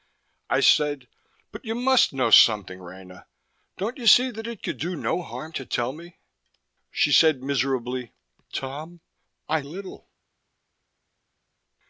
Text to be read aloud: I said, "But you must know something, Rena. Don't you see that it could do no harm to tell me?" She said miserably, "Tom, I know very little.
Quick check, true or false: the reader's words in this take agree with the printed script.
false